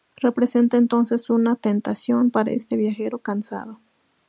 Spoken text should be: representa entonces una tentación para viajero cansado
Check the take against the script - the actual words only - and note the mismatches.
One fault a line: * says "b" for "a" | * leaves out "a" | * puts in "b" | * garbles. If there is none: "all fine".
* puts in "este"